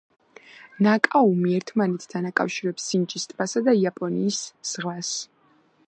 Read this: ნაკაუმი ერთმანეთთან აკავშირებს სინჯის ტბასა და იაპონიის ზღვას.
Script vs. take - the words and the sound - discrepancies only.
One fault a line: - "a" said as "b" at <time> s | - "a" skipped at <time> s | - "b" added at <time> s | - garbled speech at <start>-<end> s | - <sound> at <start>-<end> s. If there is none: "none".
none